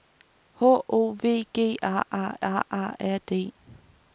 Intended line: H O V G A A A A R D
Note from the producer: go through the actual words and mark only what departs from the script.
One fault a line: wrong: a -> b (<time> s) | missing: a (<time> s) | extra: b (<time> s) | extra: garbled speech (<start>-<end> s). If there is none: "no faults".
no faults